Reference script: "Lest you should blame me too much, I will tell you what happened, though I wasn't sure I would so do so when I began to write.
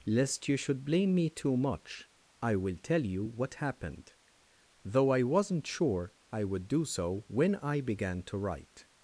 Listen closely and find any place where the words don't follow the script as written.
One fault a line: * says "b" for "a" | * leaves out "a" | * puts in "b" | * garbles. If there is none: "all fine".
* leaves out "so"